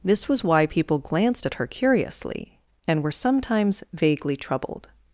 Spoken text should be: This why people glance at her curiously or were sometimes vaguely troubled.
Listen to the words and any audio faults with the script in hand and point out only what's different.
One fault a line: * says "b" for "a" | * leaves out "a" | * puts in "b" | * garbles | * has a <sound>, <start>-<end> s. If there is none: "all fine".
* puts in "was"
* says "glanced" for "glance"
* says "and" for "or"